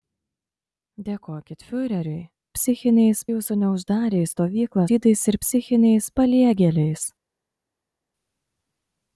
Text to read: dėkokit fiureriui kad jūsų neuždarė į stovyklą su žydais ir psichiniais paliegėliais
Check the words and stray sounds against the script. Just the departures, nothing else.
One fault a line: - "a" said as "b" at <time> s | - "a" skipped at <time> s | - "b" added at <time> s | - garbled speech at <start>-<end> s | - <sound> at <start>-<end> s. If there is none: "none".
- "kad" said as "psichiniais" at 2.6 s
- "su" skipped at 4.9 s